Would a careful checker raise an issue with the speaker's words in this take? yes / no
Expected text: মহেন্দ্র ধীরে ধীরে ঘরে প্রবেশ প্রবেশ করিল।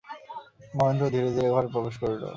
yes